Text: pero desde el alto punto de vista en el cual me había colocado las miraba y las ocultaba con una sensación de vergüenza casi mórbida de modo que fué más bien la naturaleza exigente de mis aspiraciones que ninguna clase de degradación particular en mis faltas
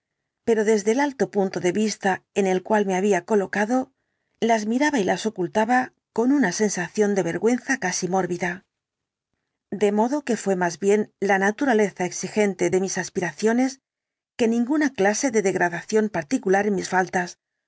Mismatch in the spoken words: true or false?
false